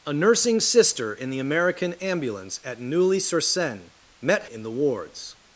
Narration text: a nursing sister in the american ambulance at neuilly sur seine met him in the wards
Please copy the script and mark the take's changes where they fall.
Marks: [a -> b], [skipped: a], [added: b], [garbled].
a nursing sister in the american ambulance at neuilly sur seine met [skipped: him] in the wards